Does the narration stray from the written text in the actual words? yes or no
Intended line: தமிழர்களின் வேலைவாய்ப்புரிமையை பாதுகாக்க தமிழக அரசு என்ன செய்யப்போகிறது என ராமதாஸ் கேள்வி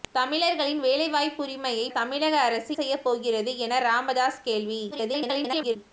yes